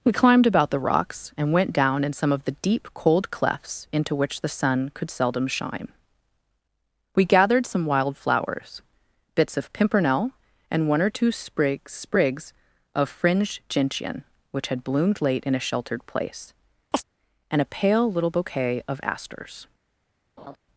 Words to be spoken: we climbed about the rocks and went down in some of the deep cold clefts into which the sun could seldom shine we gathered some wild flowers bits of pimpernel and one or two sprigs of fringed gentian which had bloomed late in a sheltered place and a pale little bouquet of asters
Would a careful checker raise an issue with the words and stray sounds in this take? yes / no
yes